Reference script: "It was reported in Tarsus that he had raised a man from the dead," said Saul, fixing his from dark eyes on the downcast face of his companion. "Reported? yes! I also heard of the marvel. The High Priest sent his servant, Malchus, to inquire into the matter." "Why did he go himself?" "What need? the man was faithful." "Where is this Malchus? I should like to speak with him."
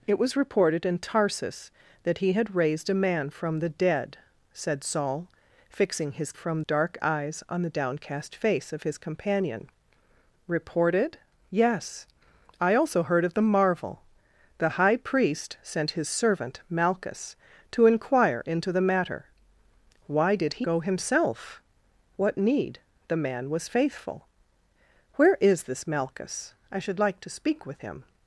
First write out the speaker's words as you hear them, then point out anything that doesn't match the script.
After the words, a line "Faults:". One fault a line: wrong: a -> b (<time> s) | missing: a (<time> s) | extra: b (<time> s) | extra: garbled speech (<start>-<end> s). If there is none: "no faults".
"It was reported in Tarsus that he had raised a man from the dead," said Saul, fixing his from dark eyes on the downcast face of his companion. "Reported? yes! I also heard of the marvel. The High Priest sent his servant, Malchus, to inquire into the matter." "Why did he go himself?" "What need? the man was faithful." "Where is this Malchus? I should like to speak with him."
Faults:
no faults